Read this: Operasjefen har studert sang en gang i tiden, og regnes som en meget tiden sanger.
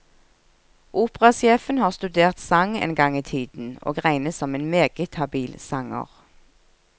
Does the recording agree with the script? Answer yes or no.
no